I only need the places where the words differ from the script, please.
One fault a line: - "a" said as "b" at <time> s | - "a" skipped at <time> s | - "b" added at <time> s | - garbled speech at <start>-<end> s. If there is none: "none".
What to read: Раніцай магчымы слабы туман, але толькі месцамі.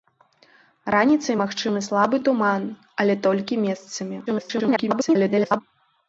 - garbled speech at 4.3-5.6 s